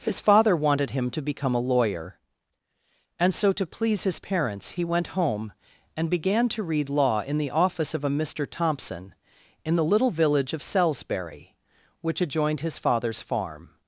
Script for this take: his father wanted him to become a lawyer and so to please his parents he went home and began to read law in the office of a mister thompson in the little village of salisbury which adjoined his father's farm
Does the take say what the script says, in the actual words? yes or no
yes